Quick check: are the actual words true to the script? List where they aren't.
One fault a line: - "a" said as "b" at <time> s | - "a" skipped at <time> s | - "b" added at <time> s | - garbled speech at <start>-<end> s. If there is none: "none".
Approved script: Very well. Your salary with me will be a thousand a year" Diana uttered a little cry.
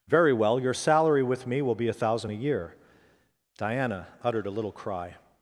none